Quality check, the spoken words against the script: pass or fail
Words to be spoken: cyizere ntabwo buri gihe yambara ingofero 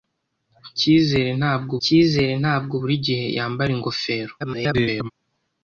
fail